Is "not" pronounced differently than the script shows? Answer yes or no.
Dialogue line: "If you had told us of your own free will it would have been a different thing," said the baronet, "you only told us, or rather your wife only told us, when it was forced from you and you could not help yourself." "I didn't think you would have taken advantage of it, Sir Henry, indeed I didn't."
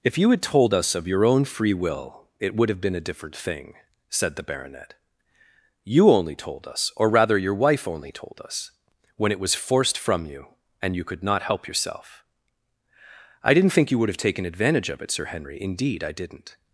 no